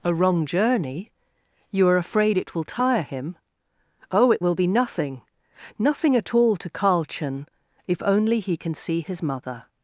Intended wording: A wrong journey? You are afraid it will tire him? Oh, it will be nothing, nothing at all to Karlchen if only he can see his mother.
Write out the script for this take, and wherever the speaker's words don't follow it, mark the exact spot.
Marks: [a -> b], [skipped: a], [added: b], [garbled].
A wrong journey? You are afraid it will tire him? Oh, it will be nothing, nothing at all to Karlchen if only he can see his mother.